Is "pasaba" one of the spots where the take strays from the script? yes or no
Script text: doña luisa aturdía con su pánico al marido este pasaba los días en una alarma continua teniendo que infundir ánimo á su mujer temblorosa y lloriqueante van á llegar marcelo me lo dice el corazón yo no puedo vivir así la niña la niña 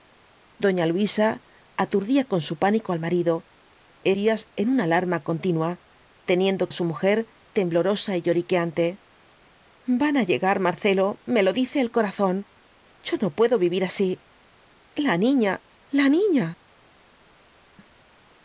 yes